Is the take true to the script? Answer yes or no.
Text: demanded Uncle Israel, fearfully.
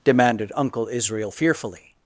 yes